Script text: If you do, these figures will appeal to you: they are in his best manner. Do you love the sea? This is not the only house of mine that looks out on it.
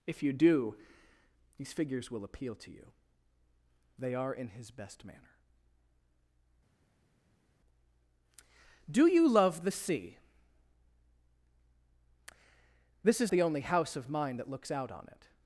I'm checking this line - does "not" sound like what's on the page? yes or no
no